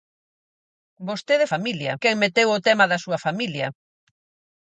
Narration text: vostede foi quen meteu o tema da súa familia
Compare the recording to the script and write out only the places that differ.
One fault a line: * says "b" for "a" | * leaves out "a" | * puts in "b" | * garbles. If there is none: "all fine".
* says "familia" for "foi"